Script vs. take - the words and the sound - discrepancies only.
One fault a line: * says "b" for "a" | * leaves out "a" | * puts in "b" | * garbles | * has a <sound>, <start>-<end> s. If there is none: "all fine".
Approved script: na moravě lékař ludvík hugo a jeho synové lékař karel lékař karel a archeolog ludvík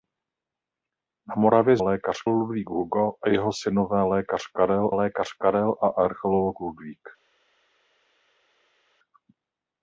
all fine